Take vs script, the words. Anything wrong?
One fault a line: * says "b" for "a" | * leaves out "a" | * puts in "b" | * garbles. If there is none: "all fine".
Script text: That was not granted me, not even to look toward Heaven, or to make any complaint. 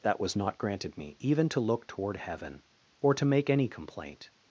* leaves out "not"